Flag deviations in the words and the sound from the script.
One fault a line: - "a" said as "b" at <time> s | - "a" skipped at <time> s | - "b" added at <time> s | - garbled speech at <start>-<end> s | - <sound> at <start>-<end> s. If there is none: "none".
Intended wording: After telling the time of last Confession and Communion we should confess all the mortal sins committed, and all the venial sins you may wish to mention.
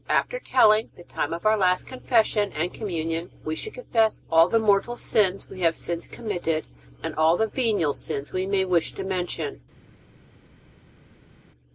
- "our" added at 1.4 s
- "we have since" added at 5.5 s
- "you" said as "we" at 8.3 s